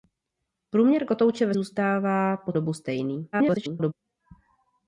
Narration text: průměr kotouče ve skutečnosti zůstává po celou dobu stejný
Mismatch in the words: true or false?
true